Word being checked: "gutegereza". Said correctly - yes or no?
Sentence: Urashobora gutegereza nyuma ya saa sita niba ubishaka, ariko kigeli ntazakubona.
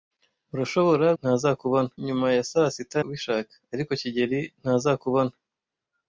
no